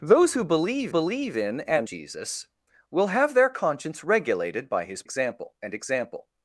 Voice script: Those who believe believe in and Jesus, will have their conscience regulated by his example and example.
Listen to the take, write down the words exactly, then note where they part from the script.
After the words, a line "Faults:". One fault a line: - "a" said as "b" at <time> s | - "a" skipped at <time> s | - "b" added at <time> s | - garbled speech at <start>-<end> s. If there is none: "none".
Those who believe believe in and Jesus, will have their conscience regulated by his example and example.
Faults:
none